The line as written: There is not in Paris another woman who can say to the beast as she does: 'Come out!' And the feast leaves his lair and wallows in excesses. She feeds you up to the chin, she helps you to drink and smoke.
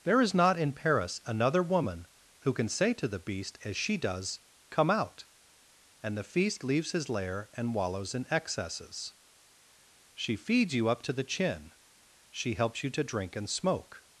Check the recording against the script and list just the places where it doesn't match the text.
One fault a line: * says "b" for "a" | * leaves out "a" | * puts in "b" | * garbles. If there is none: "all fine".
all fine